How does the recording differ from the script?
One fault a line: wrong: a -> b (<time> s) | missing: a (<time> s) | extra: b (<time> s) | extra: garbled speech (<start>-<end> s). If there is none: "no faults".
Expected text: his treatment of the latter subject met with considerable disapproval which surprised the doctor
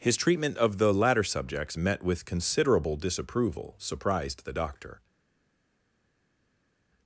wrong: subject -> subjects (1.2 s)
missing: which (3.7 s)